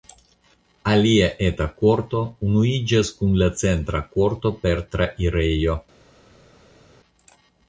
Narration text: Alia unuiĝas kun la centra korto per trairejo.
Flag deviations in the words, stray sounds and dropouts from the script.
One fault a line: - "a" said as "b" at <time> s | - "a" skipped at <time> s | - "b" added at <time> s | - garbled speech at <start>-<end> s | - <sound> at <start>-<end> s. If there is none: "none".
- "eta korto" added at 1.5 s